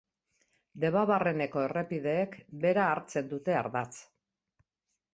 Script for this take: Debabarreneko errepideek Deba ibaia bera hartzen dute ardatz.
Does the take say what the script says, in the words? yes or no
no